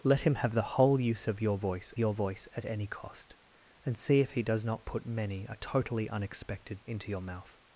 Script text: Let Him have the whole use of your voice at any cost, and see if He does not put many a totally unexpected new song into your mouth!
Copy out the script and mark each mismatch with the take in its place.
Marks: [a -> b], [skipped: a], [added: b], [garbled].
Let Him have the whole use of your voice [added: your voice] at any cost, and see if He does not put many a totally unexpected [skipped: new song] into your mouth!